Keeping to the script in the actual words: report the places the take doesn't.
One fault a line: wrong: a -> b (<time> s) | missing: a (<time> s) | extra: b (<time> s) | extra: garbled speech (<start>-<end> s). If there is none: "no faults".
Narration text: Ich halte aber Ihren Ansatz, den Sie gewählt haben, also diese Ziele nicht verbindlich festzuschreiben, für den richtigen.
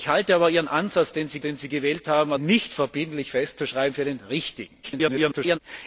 extra: den Sie (1.4 s)
missing: also diese Ziele (2.3 s)
extra: garbled speech (4.8-5.6 s)